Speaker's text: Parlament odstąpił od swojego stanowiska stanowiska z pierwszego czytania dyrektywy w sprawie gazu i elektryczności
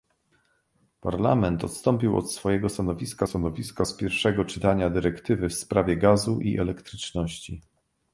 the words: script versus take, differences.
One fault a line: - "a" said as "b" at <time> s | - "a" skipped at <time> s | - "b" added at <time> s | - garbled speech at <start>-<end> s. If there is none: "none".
none